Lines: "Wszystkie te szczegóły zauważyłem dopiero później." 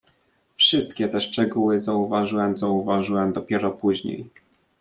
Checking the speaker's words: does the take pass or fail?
fail